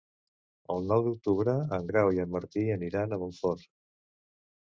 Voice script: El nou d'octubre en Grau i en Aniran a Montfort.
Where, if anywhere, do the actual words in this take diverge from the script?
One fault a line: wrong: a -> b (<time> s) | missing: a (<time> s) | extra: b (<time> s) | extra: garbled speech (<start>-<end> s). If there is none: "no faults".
extra: Martí (2.4 s)